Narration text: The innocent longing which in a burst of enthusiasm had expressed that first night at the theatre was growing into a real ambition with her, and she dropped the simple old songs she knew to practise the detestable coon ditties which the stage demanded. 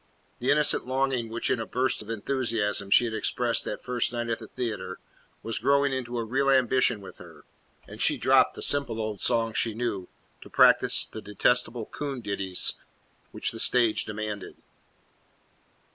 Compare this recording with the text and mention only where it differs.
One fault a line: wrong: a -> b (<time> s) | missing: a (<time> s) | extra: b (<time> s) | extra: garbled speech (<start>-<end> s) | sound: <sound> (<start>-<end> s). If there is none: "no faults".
extra: she (2.9 s)